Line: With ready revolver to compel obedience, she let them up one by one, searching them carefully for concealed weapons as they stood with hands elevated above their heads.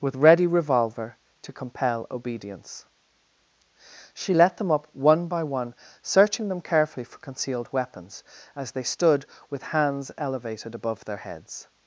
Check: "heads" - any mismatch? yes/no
no